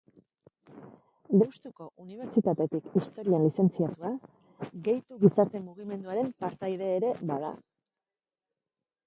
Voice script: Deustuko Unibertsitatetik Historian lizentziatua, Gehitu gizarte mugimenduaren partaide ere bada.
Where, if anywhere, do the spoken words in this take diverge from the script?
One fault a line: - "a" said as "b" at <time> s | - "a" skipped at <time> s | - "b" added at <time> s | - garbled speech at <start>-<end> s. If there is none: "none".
none